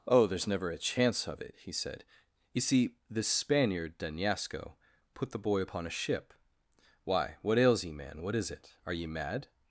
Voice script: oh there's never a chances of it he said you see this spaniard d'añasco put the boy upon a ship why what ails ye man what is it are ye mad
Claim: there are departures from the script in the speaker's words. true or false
true